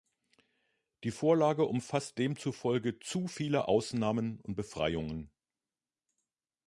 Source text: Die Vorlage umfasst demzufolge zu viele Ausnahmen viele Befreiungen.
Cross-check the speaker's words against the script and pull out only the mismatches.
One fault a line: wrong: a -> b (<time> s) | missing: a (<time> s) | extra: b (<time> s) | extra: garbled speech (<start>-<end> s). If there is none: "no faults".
wrong: viele -> und (4.4 s)